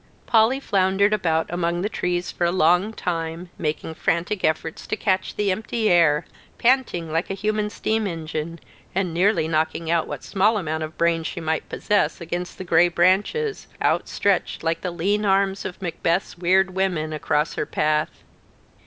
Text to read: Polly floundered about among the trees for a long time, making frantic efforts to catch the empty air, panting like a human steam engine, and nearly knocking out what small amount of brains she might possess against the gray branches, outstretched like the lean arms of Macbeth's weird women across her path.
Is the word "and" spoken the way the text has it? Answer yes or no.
yes